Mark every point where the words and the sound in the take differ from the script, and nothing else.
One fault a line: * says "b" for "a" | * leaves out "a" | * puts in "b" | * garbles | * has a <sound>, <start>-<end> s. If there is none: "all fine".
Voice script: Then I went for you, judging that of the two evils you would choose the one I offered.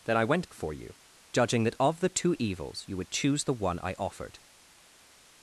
all fine